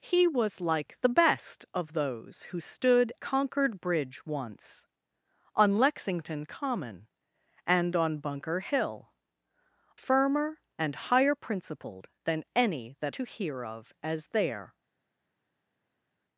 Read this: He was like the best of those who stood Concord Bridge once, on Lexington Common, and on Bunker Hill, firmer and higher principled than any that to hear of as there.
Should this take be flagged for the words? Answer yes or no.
no